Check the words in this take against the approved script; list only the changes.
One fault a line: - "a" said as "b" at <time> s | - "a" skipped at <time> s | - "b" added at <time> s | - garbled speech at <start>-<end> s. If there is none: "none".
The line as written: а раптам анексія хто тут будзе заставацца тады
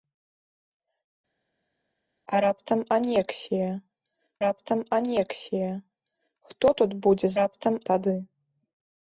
- "раптам анексія" added at 4.5 s
- "заставацца" said as "раптам" at 7.4 s